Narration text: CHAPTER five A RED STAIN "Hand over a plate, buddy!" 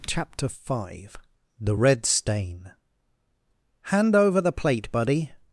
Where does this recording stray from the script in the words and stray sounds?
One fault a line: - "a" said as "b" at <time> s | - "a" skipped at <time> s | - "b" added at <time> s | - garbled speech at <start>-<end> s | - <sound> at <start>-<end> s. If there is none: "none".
- "A" said as "THE" at 1.6 s
- "a" said as "the" at 4.4 s